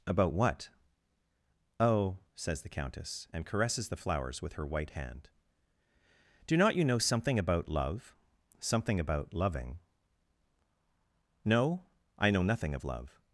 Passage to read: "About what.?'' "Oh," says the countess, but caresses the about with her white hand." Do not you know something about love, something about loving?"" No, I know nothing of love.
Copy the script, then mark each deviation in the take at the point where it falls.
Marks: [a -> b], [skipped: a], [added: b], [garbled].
"About what.?'' "Oh," says the countess, [but -> and] caresses the [about -> flowers] with her white hand." Do not you know something about love, something about loving?"" No, I know nothing of love.